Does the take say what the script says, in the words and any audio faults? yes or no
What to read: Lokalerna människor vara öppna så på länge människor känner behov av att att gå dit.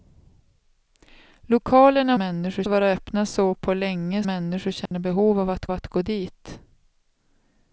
no